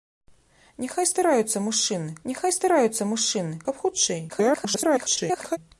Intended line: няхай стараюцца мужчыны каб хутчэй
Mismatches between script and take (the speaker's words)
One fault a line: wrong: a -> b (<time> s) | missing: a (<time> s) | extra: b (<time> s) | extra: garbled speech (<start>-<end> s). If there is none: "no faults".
extra: няхай стараюцца мужчыны (2.3 s)
extra: garbled speech (4.3-5.6 s)